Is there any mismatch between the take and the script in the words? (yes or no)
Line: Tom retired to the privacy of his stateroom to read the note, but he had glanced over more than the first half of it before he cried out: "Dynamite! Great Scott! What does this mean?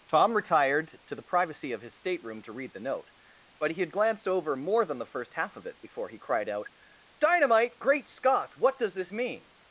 no